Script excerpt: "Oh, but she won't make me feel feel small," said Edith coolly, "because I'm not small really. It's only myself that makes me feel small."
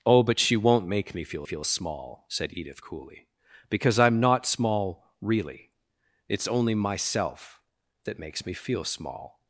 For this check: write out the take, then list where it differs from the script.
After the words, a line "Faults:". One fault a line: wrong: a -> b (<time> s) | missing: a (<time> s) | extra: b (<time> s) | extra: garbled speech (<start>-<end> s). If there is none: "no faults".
"Oh, but she won't make me feel feel small," said Edith coolly, "because I'm not small really. It's only myself that makes me feel small."
Faults:
no faults